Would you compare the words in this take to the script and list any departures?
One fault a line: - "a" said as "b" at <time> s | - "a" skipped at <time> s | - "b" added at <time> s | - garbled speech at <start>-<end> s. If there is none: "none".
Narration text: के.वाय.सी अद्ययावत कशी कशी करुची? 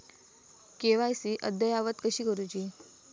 - "कशी" skipped at 2.2 s